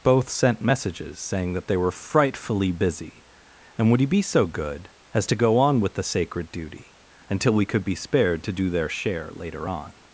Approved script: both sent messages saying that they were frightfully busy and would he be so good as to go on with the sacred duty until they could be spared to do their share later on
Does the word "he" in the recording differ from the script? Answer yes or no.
no